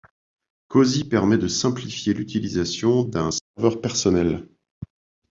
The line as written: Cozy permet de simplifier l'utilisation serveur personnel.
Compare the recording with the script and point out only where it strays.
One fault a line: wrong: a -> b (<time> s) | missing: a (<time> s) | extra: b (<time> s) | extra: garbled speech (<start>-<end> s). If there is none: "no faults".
extra: d'un (3.0 s)